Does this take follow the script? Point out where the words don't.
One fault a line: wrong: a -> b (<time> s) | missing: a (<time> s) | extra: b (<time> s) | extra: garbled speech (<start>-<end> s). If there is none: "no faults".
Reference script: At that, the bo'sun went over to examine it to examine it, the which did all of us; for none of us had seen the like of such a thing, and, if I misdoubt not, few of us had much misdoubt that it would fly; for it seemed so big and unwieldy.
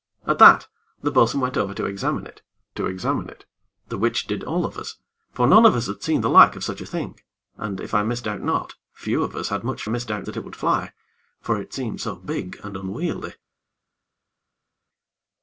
no faults